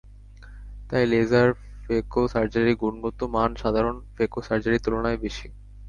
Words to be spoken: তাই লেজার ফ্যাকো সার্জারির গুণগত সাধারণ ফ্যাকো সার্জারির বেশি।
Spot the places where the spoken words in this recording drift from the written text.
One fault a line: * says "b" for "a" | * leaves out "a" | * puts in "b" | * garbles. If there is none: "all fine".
* puts in "মান"
* puts in "তুলনায়"